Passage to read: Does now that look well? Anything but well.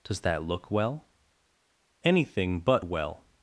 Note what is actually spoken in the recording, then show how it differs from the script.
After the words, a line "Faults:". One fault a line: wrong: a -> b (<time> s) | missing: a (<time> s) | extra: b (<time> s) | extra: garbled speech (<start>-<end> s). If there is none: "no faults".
Does that look well? Anything but well.
Faults:
missing: now (0.2 s)